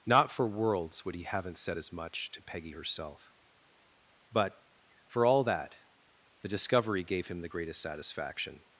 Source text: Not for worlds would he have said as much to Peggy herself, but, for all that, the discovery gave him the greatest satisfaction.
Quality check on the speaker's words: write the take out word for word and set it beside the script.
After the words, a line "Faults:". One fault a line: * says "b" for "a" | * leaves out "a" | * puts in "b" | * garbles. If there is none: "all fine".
Not for worlds would he haven't said as much to Peggy herself, but, for all that, the discovery gave him the greatest satisfaction.
Faults:
* says "haven't" for "have"